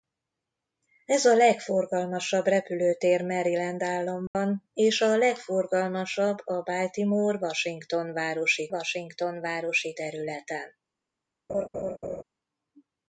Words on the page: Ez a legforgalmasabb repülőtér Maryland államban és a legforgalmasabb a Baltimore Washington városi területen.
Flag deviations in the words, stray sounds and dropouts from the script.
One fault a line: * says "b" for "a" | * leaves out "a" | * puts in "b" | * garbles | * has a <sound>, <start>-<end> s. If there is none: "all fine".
* has a dropout, 4.3-4.3 s
* puts in "Washington városi"
* has a laugh, 11.5-12.2 s